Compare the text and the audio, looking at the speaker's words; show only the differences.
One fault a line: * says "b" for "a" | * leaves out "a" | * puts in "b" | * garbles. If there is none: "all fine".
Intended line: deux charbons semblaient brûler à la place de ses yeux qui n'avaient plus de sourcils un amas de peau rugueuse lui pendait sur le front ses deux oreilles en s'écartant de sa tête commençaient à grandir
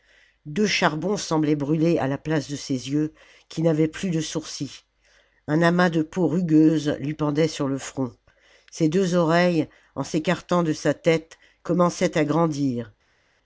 all fine